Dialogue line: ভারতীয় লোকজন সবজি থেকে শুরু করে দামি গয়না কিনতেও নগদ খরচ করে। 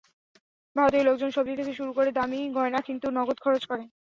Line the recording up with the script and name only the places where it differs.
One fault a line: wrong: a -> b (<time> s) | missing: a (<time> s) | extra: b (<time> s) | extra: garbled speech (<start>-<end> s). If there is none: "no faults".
no faults